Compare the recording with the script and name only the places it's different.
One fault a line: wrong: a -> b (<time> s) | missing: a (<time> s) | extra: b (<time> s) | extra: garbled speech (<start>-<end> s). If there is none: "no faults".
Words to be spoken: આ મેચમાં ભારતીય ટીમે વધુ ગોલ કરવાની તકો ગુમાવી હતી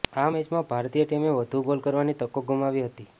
no faults